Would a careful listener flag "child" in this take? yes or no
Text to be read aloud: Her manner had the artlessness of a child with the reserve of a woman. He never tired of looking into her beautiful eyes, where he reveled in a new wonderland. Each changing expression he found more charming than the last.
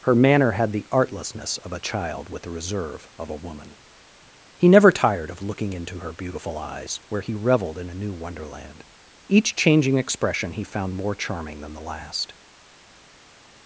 no